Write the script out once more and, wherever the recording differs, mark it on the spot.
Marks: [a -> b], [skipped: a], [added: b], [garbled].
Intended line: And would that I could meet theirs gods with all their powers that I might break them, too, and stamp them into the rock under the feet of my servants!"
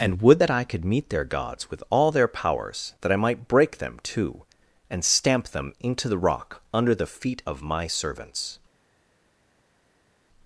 And would that I could meet [theirs -> their] gods with all their powers that I might break them, too, and stamp them into the rock under the feet of my servants!"